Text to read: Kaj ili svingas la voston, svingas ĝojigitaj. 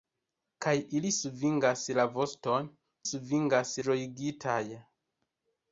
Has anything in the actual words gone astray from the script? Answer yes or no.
no